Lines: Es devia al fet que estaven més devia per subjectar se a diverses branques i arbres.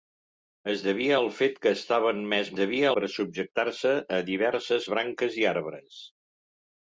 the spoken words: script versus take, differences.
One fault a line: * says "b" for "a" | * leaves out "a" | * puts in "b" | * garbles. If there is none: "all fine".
all fine